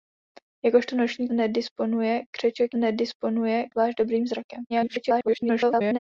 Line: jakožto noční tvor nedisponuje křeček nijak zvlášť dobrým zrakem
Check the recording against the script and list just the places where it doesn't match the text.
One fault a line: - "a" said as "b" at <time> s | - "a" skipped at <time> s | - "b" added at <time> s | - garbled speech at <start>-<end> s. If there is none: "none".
- "tvor" skipped at 1.3 s
- "nijak" said as "nedisponuje" at 2.8 s
- garbled speech at 4.7-6.0 s